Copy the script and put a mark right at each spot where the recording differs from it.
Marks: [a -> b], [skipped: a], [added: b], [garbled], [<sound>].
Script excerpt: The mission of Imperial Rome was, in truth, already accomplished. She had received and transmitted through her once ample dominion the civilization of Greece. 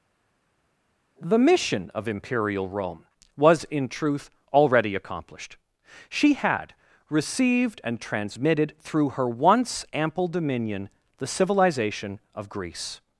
The mission of Imperial Rome was, in truth, already accomplished. She had received and transmitted through her once ample dominion the civilization of Greece.